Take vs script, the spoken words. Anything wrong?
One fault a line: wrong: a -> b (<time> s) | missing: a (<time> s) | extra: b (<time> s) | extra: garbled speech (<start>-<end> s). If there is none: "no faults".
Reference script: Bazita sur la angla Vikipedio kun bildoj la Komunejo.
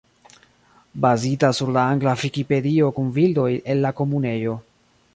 extra: el (3.8 s)